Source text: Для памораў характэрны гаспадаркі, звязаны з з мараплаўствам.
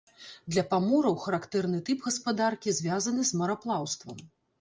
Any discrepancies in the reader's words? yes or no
yes